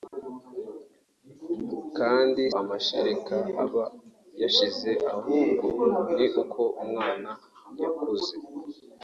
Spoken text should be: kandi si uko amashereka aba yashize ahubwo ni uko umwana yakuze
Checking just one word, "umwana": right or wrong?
right